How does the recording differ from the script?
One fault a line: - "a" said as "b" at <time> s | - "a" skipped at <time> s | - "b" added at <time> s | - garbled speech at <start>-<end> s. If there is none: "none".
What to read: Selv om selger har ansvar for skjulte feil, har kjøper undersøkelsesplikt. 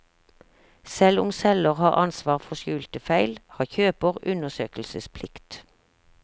none